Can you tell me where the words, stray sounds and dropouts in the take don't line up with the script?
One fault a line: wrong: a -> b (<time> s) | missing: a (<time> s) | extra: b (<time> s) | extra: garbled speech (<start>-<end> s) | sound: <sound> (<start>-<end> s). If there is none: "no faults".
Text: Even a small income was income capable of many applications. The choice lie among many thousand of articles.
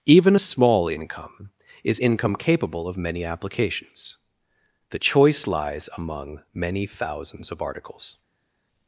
wrong: was -> is (1.8 s)
wrong: lie -> lies (5.5 s)
wrong: thousand -> thousands (6.9 s)